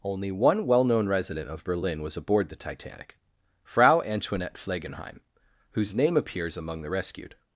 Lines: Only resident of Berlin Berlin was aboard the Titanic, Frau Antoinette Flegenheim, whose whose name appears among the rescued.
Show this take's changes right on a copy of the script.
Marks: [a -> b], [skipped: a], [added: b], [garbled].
Only [added: one well known] resident of Berlin [skipped: Berlin] was aboard the Titanic, Frau Antoinette Flegenheim, whose [skipped: whose] name appears among the rescued.